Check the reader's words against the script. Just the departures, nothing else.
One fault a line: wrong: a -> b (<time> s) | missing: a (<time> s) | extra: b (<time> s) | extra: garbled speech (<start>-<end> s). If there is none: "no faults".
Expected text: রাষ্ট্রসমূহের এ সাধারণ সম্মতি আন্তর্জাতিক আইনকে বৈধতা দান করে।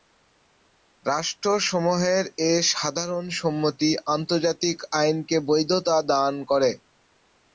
no faults